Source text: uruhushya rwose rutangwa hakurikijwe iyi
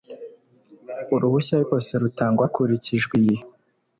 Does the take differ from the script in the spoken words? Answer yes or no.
no